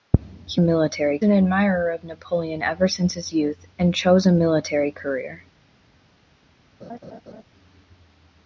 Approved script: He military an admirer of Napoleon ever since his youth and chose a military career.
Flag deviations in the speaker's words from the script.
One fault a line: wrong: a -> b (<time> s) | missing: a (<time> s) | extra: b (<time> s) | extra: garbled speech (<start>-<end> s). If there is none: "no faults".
no faults